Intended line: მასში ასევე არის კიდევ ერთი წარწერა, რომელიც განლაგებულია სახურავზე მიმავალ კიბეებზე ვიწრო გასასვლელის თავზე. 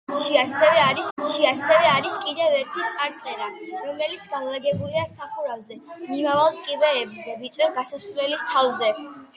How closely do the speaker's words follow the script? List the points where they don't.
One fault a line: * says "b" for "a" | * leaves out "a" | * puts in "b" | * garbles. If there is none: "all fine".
* puts in "მასში ასევე არის"